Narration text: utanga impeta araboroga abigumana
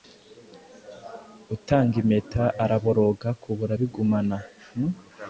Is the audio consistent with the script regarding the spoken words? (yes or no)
no